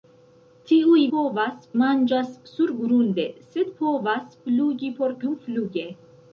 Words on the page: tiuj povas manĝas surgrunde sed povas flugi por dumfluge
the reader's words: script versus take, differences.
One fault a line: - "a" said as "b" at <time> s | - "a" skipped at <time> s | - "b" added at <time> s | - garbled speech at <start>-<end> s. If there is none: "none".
none